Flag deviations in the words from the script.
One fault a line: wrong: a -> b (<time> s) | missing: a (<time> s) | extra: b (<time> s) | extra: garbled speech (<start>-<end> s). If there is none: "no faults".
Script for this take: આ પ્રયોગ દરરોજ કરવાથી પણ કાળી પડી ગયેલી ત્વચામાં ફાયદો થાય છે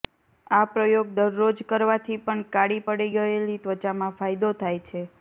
no faults